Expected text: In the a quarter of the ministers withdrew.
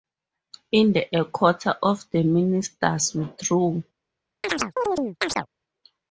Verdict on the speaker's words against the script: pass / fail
pass